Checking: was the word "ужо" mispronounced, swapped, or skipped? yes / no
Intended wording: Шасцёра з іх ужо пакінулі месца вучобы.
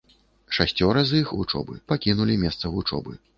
yes